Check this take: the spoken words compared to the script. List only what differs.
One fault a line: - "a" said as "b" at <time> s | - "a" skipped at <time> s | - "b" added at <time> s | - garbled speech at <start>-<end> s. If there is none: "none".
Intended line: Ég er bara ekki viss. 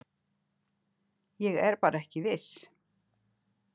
none